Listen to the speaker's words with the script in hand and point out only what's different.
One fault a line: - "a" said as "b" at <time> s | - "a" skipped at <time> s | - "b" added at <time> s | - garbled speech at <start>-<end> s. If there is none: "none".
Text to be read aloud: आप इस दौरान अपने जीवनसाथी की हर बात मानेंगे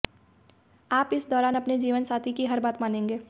none